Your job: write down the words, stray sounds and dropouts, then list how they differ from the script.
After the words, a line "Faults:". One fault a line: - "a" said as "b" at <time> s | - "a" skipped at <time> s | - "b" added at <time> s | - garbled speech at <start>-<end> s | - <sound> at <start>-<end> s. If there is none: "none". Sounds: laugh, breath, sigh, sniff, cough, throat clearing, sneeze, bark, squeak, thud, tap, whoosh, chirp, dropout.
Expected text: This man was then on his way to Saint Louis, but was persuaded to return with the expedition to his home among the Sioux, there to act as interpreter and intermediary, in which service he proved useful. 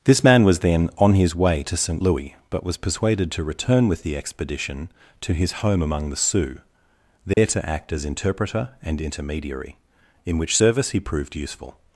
This man was then on his way to Saint Louis, but was persuaded to return with the expedition to his home among the Sioux, there to act as interpreter and intermediary, in which service he proved useful.
Faults:
- dropout at 7.3-7.4 s